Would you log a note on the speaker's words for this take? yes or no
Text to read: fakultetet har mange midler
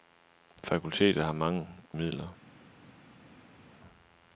no